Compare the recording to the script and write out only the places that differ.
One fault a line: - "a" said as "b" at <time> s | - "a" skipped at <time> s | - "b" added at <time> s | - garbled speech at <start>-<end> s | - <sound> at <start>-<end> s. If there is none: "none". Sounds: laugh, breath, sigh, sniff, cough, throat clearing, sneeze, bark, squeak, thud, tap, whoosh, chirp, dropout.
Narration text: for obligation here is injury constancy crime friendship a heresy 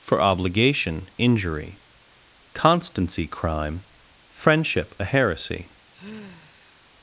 - "here is" skipped at 1.1 s
- sigh at 5.9-6.9 s